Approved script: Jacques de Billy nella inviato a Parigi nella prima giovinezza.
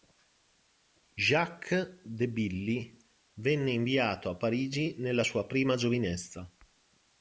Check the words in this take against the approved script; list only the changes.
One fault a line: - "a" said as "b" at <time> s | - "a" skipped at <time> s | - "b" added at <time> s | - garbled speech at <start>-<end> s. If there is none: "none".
- "nella" said as "venne" at 3.4 s
- "sua" added at 5.2 s